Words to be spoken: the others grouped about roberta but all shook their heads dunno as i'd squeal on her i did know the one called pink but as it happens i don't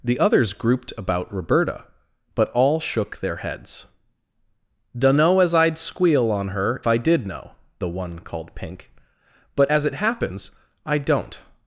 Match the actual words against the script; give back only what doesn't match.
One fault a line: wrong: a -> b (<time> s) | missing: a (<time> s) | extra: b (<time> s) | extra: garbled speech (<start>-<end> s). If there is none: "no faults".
no faults